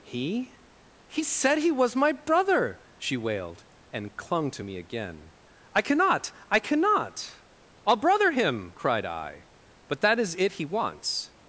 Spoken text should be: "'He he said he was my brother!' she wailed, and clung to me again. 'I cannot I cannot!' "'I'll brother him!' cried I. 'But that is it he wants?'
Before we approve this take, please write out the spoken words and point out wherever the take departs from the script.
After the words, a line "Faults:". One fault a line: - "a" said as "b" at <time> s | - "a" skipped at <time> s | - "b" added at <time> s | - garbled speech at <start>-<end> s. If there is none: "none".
"'He he said he was my brother!' she wailed, and clung to me again. 'I cannot I cannot!' "'I'll brother him!' cried I. 'But that is it he wants?'
Faults:
none